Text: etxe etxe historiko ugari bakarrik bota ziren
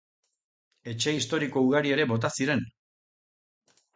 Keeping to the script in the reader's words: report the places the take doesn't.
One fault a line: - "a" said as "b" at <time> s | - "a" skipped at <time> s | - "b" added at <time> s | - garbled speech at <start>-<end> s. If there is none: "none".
- "etxe" skipped at 1.1 s
- "bakarrik" said as "ere" at 1.9 s